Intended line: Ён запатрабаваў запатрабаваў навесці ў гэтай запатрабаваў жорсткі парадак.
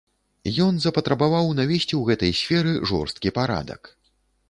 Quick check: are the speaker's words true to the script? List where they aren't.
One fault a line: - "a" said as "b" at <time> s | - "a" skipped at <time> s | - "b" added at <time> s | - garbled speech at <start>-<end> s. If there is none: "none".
- "запатрабаваў" skipped at 1.5 s
- "запатрабаваў" said as "сферы" at 2.4 s